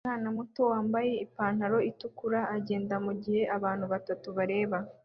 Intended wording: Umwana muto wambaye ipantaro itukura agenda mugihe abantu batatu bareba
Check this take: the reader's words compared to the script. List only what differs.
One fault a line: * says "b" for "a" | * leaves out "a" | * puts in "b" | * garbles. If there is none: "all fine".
all fine